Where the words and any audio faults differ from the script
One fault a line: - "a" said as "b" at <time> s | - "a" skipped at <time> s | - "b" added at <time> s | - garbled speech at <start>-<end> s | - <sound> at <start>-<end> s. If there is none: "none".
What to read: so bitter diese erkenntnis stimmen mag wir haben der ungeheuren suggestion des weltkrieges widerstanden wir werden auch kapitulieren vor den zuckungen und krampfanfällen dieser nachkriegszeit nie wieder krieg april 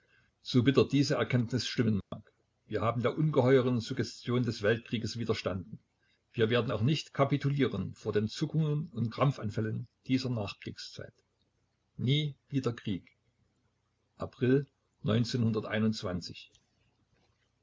- dropout at 2.0-2.1 s
- "nicht" added at 6.8 s